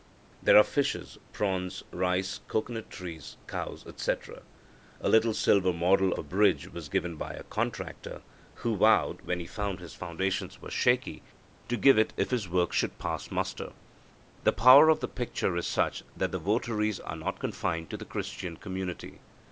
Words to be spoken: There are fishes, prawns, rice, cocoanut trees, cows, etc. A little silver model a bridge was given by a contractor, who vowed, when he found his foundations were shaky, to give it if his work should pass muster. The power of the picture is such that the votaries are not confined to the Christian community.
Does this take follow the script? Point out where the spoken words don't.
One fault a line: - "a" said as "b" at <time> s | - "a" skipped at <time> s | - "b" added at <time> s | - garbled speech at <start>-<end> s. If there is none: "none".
none